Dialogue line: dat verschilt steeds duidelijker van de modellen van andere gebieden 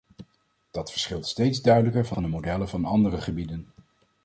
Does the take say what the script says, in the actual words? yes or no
no